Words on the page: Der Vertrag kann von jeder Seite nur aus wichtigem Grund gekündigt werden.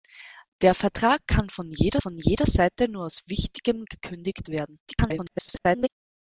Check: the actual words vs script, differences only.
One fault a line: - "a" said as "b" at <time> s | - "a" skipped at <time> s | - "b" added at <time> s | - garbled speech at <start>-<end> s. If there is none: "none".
- "von jeder" added at 2.0 s
- "Grund" skipped at 3.8 s
- garbled speech at 4.9-5.9 s